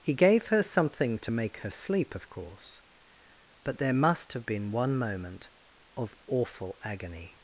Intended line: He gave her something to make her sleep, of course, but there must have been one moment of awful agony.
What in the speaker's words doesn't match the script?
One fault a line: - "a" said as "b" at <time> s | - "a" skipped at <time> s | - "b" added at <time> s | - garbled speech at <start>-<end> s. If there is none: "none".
none